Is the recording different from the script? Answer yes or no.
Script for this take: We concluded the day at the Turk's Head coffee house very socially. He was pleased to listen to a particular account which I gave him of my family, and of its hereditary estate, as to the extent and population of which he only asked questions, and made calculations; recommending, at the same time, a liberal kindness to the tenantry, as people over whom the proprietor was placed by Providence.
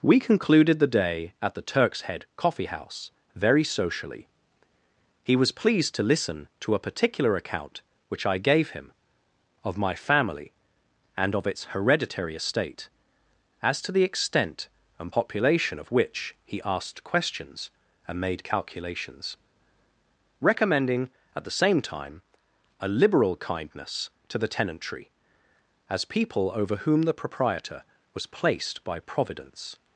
yes